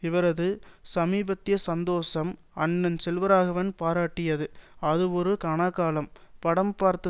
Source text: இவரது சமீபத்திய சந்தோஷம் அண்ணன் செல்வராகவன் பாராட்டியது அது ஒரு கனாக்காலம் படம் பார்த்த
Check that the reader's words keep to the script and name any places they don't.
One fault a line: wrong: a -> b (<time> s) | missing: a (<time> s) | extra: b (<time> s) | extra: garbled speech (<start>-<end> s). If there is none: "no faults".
no faults